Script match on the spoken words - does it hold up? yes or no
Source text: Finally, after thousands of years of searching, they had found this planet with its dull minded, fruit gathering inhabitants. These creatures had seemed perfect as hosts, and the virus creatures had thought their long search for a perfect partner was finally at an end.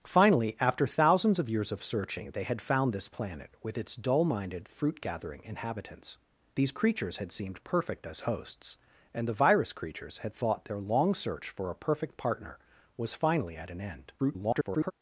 no